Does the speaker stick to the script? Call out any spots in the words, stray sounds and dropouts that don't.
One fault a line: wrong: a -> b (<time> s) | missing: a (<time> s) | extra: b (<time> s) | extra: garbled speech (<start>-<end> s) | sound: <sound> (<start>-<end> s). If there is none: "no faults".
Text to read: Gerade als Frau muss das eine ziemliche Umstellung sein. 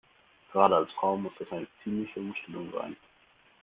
no faults